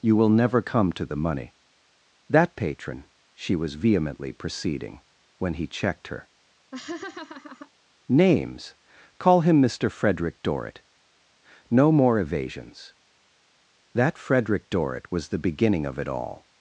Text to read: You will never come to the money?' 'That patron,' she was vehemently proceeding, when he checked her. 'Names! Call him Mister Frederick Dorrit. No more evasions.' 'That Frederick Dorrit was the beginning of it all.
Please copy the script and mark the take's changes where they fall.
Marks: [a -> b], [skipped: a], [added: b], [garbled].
You will never come to the money?' 'That patron,' she was vehemently proceeding, when he checked her. 'Names! Call him Mister Frederick Dorrit. No more evasions.' 'That Frederick Dorrit was the beginning of it all.